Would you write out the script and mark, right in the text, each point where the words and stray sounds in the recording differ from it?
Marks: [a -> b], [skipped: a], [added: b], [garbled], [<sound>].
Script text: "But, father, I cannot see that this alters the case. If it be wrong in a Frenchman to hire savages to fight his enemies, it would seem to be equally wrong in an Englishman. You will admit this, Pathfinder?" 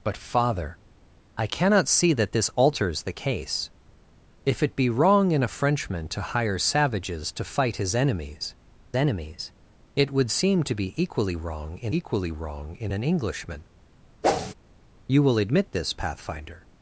"But, father, I cannot see that this alters the case. If it be wrong in a Frenchman to hire savages to fight his enemies, [added: enemies] it would seem to be equally wrong in [added: equally wrong in] an Englishman. [whoosh] You will admit this, Pathfinder?"